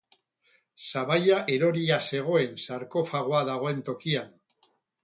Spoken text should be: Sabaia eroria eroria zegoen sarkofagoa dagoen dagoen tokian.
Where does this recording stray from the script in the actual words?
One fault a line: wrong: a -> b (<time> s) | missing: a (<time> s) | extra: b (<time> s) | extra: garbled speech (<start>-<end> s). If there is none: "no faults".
missing: eroria (2.0 s)
missing: dagoen (3.9 s)